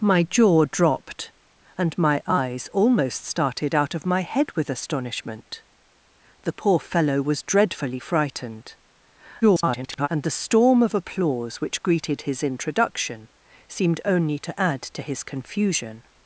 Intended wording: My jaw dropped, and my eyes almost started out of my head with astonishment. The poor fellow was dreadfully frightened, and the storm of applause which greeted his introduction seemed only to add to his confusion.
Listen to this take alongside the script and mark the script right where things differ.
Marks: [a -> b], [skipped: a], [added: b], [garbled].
My jaw dropped, and my eyes almost started out of my head with astonishment. The poor fellow was dreadfully frightened, [garbled] and the storm of applause which greeted his introduction seemed only to add to his confusion.